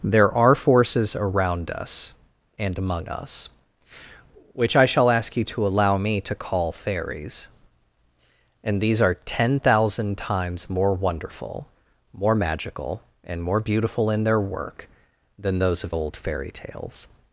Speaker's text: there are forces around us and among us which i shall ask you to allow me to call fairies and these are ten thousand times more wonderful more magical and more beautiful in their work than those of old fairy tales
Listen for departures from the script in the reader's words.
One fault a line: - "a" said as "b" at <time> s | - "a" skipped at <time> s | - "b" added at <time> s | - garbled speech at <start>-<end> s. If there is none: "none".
none